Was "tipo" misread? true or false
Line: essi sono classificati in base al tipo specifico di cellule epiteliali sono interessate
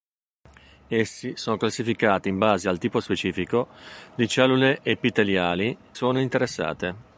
false